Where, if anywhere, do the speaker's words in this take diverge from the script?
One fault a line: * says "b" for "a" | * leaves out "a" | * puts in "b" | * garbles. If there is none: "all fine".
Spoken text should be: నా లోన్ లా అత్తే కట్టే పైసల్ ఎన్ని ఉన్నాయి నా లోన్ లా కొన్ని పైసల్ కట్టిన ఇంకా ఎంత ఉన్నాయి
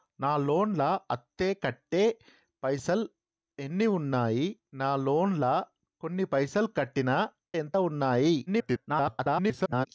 * leaves out "ఇంకా"
* garbles